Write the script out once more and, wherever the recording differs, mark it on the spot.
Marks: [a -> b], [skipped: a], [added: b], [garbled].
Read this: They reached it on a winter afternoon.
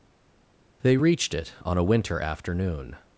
They reached it on a winter afternoon.